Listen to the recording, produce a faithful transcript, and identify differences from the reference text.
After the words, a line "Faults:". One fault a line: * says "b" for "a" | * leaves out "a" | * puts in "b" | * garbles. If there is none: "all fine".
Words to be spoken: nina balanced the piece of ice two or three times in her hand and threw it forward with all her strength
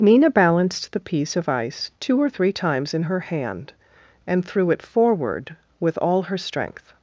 nina balanced the piece of ice two or three times in her hand and threw it forward with all her strength
Faults:
all fine